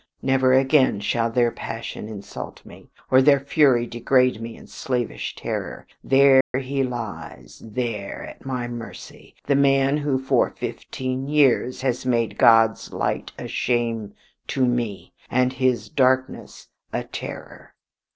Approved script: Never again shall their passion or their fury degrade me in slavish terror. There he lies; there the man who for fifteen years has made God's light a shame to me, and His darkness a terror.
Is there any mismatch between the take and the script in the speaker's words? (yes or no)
yes